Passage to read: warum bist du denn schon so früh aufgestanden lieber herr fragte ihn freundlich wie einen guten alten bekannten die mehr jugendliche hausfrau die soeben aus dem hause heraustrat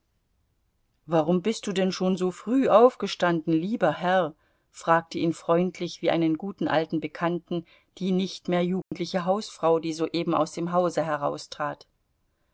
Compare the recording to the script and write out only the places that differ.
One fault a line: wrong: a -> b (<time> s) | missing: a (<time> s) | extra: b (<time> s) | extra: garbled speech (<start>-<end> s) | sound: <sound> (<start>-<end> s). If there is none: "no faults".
extra: nicht (8.1 s)
sound: dropout (8.8-8.9 s)